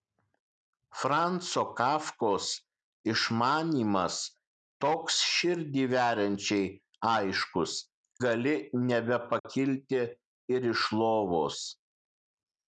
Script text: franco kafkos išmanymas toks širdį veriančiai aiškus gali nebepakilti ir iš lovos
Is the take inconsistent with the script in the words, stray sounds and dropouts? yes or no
yes